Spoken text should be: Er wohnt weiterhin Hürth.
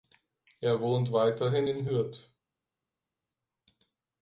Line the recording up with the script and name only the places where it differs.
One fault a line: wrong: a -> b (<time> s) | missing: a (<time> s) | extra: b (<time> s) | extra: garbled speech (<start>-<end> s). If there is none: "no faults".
extra: in (1.6 s)